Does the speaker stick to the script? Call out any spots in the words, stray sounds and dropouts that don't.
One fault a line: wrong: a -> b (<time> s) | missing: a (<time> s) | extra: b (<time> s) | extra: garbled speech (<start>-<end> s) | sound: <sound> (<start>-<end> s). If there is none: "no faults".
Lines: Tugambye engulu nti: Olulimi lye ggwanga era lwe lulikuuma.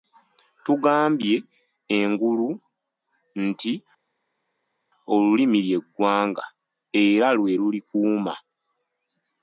no faults